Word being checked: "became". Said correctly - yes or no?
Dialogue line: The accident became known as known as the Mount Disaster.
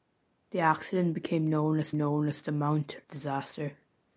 yes